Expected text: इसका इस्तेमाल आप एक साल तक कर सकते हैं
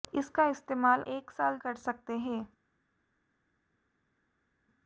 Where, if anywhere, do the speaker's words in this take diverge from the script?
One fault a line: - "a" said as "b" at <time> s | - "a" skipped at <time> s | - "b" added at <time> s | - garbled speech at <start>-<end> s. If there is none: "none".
- "आप" skipped at 1.0 s
- "तक" skipped at 1.6 s